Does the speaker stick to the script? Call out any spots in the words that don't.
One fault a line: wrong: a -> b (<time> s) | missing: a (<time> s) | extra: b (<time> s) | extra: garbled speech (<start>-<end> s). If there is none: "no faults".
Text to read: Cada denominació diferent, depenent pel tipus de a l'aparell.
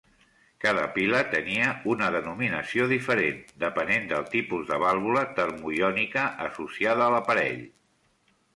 extra: pila tenia una (0.9 s)
wrong: pel -> del (4.1 s)
extra: vàlvula termoiònica associada (4.8 s)